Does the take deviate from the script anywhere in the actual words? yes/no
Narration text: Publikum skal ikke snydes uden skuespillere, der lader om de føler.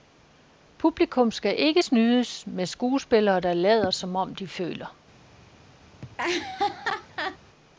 yes